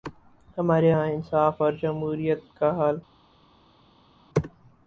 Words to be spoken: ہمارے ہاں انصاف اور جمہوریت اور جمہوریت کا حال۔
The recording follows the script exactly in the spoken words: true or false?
false